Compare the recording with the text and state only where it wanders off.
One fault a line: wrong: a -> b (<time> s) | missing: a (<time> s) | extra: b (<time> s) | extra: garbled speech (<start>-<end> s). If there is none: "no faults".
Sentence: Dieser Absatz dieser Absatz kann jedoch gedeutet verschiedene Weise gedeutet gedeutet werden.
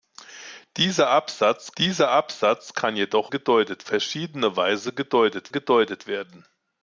no faults